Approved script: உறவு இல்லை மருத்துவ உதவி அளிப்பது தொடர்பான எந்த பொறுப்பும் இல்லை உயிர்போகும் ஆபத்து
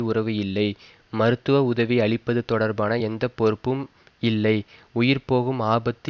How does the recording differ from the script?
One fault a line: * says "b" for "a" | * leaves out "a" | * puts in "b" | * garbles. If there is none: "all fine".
all fine